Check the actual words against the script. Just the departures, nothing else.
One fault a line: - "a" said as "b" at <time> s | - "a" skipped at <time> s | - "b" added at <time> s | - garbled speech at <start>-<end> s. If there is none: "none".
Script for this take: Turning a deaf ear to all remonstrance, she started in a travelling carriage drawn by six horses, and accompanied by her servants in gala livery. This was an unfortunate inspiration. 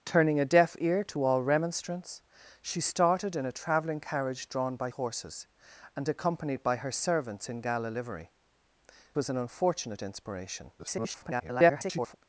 - "six" skipped at 4.9 s
- "This" skipped at 8.3 s
- garbled speech at 10.8-12.2 s